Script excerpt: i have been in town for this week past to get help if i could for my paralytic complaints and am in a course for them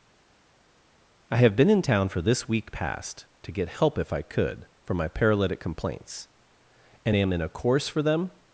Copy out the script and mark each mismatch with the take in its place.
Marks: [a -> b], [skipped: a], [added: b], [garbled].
i have been in town for this week past to get help if i could for my paralytic complaints and am in a course for them